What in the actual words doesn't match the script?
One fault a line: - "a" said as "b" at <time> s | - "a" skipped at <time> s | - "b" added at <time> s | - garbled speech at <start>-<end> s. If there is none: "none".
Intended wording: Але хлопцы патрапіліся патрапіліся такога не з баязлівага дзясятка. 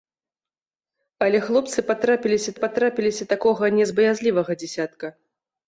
none